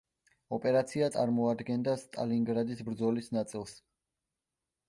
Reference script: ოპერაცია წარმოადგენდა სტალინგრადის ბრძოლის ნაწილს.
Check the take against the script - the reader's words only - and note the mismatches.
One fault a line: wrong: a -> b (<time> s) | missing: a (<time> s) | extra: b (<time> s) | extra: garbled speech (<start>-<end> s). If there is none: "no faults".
no faults